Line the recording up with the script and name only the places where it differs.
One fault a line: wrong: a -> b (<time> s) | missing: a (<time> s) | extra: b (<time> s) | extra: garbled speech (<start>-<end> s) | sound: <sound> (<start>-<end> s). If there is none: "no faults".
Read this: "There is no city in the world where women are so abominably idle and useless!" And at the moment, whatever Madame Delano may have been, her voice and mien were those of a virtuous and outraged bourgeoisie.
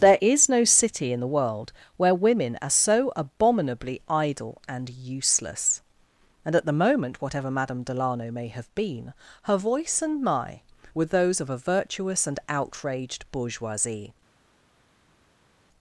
wrong: mien -> my (10.2 s)